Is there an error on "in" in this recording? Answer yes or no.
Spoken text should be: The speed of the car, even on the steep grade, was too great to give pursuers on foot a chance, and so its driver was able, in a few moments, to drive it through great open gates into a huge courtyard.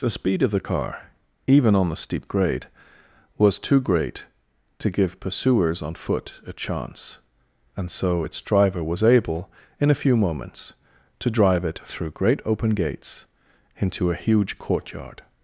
no